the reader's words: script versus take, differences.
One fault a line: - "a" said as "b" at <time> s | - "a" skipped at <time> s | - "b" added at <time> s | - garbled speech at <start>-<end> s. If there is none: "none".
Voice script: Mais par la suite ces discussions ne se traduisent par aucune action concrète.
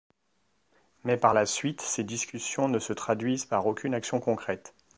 none